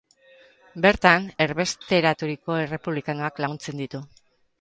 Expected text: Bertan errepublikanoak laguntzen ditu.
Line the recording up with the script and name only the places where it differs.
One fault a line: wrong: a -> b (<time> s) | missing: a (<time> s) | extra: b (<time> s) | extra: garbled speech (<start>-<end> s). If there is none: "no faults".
extra: erbesteraturiko (1.4 s)